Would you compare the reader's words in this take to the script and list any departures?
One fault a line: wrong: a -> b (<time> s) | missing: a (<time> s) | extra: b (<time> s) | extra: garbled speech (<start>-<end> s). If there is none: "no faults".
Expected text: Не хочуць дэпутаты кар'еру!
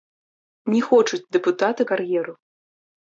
no faults